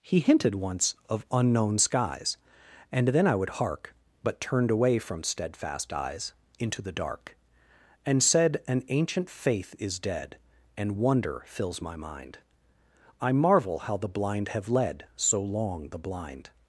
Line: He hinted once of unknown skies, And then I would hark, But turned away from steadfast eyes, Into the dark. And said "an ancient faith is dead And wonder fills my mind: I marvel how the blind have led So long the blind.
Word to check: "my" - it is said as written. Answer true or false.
true